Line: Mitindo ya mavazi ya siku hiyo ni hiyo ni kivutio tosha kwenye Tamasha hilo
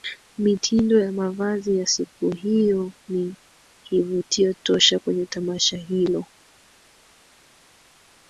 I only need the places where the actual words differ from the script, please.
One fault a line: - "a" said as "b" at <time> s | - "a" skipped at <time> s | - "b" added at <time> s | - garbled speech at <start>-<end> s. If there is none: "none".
- "hiyo ni" skipped at 3.4 s